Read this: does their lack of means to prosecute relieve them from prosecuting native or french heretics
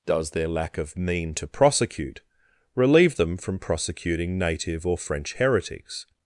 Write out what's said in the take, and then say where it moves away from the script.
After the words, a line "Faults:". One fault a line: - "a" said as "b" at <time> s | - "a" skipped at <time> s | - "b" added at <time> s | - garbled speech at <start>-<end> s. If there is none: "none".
does their lack of mean to prosecute relieve them from prosecuting native or french heretics
Faults:
- "means" said as "mean" at 1.0 s